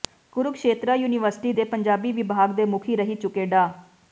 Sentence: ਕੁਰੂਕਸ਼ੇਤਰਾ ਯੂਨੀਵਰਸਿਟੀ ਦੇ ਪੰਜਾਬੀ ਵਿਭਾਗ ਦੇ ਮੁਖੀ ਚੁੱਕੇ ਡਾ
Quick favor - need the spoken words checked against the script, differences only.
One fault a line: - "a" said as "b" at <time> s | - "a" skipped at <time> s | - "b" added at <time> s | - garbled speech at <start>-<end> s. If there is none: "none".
- "ਰਹਿ" added at 3.0 s